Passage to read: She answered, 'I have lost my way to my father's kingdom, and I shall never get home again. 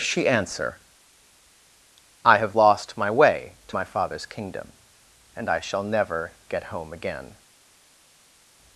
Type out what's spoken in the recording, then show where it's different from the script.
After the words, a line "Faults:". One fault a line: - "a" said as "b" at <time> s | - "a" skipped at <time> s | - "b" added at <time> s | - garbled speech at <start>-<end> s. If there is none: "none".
She answer, 'I have lost my way to my father's kingdom, and I shall never get home again.
Faults:
- "answered" said as "answer" at 0.3 s